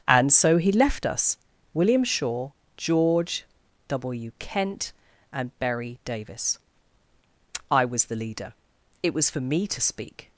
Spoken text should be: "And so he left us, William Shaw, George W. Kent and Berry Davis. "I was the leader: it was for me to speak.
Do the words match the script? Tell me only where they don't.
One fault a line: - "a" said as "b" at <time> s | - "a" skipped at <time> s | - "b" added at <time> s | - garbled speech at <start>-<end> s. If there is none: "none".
none